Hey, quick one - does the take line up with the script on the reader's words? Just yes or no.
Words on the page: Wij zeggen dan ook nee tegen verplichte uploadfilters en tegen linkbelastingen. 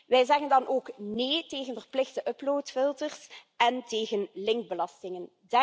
yes